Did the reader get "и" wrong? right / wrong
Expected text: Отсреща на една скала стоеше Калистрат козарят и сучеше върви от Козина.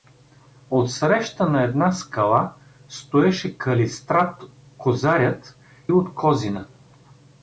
wrong